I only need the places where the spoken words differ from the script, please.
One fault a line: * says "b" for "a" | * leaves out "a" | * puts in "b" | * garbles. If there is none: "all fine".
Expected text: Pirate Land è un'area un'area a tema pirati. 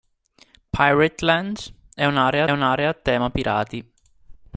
all fine